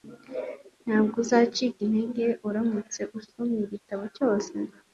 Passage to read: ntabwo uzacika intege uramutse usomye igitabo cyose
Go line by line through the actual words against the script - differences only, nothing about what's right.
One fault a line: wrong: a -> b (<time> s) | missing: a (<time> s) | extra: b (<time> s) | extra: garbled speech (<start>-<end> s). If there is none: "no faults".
no faults